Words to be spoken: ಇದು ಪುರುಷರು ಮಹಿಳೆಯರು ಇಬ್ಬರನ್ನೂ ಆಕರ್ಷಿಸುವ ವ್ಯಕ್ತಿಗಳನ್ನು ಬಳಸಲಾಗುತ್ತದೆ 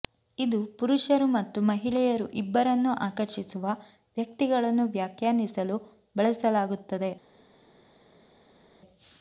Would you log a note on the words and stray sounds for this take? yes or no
yes